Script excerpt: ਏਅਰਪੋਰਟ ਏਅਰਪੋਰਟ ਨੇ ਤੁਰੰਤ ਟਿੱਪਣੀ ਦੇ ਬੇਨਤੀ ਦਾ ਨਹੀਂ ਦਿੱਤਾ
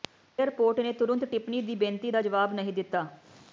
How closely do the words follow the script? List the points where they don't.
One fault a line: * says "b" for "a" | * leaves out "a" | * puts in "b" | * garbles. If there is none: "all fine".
* leaves out "ਏਅਰਪੋਰਟ"
* says "ਦੀ" for "ਦੇ"
* puts in "ਜਵਾਬ"